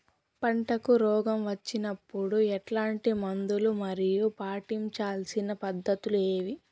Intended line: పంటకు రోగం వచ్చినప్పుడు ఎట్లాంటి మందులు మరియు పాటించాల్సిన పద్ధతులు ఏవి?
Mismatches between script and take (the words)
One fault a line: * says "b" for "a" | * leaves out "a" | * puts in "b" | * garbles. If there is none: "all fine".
all fine